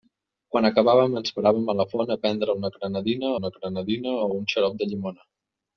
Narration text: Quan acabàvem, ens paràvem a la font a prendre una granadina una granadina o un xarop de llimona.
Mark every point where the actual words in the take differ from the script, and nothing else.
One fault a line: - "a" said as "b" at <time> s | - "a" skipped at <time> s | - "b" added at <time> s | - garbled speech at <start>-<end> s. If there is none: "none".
none